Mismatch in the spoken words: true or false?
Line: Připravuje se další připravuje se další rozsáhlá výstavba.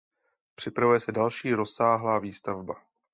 true